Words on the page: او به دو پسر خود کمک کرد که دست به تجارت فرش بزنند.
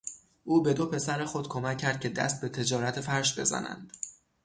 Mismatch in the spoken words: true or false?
false